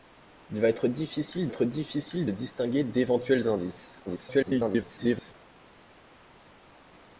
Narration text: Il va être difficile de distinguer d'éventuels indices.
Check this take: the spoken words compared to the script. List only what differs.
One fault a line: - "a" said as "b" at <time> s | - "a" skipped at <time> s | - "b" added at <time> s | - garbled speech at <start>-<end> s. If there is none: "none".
- "être difficile" added at 1.5 s
- garbled speech at 4.1-5.3 s